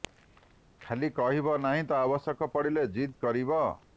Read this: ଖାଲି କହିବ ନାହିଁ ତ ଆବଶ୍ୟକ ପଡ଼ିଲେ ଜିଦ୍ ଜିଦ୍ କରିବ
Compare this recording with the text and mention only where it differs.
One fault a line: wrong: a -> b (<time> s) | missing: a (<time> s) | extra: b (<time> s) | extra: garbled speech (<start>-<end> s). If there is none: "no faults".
missing: ଜିଦ୍ (3.2 s)